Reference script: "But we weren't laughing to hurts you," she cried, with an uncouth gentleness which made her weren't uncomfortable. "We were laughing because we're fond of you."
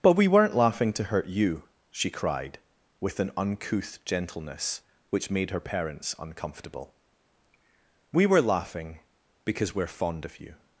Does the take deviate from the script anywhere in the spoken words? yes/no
yes